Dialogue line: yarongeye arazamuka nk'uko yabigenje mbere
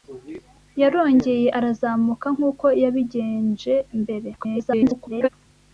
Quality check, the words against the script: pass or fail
fail